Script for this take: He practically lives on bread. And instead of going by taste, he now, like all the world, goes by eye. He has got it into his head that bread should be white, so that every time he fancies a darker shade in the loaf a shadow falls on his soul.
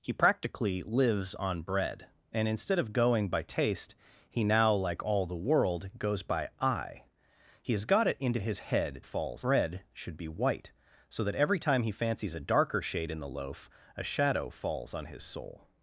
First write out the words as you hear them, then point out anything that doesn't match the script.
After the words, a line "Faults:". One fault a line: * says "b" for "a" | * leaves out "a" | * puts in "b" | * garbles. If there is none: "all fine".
He practically lives on bread. And instead of going by taste, he now, like all the world, goes by eye. He has got it into his head falls bread should be white, so that every time he fancies a darker shade in the loaf a shadow falls on his soul.
Faults:
* says "falls" for "that"